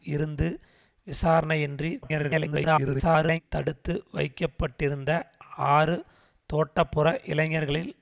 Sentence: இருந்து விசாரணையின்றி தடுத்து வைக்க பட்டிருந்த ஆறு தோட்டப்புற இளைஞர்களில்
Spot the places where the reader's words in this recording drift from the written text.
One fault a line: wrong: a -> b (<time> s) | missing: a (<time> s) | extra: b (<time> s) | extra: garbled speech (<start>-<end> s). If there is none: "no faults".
extra: garbled speech (2.0-3.4 s)